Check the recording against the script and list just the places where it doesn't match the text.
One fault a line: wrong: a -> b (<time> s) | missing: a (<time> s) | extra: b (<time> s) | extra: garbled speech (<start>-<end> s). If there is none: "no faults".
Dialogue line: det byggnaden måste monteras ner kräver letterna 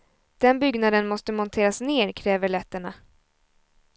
wrong: det -> den (0.4 s)